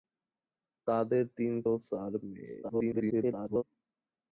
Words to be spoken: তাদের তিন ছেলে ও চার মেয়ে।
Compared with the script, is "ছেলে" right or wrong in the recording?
wrong